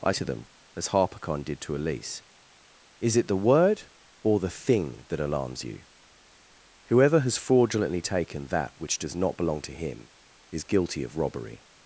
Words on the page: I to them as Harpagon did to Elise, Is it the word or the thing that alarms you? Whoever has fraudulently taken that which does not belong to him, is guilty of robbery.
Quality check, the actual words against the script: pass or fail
pass